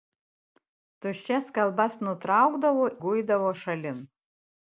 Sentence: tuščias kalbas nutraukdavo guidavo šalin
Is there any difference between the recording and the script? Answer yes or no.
no